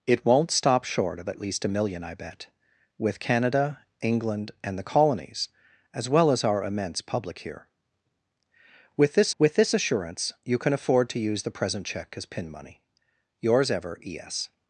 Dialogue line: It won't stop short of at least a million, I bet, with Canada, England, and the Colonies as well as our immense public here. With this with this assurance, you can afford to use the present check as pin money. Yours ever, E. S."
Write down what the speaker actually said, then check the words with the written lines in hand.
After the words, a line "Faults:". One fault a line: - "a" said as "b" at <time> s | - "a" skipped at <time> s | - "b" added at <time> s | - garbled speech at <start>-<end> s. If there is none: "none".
It won't stop short of at least a million, I bet, with Canada, England, and the Colonies as well as our immense public here. With this with this assurance, you can afford to use the present check as pin money. Yours ever, E. S."
Faults:
none